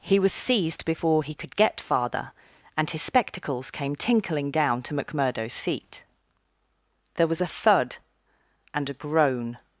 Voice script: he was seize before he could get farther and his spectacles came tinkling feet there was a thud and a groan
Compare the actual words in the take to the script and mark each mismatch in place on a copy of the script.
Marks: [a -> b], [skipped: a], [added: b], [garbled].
he was [seize -> seized] before he could get farther and his spectacles came tinkling [added: down to mcmurdo's] feet there was a thud and a groan